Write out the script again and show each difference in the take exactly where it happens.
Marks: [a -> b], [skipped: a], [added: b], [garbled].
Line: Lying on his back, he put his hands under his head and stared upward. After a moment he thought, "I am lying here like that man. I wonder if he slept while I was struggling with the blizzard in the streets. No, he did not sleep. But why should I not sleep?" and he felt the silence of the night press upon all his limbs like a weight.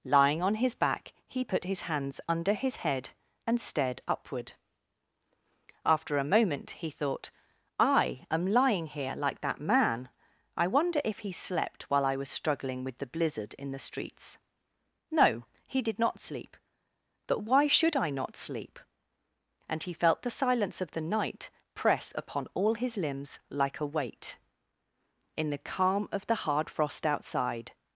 Lying on his back, he put his hands under his head and stared upward. After a moment he thought, "I am lying here like that man. I wonder if he slept while I was struggling with the blizzard in the streets. No, he did not sleep. But why should I not sleep?" and he felt the silence of the night press upon all his limbs like a weight. [added: In the calm of the hard frost outside]